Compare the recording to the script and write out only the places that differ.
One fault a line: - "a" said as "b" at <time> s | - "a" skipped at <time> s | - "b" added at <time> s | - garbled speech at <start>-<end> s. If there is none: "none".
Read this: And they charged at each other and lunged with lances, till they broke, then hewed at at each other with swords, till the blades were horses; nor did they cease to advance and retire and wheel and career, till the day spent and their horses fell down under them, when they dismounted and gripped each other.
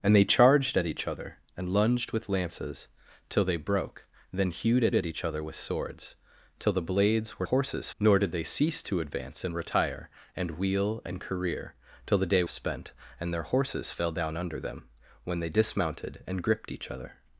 none